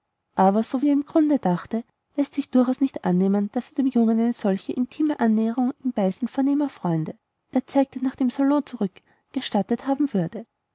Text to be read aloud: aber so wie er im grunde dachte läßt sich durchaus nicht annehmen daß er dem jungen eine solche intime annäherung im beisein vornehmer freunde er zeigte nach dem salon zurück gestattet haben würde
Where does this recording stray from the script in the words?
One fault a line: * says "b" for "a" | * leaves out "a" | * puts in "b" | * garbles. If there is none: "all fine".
all fine